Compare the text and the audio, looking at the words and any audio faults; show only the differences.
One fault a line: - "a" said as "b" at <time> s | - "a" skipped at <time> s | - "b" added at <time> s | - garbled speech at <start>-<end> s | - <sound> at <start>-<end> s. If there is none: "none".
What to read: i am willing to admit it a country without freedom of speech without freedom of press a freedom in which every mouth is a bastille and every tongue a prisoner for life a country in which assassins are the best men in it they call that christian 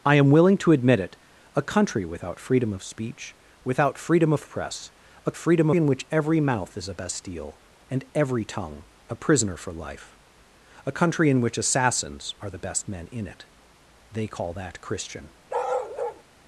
- bark at 15.5-16.2 s